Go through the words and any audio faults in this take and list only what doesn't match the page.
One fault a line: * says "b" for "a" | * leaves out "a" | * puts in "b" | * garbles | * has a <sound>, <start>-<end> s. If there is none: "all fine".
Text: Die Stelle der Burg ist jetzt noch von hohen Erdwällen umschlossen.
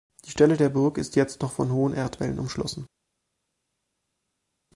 all fine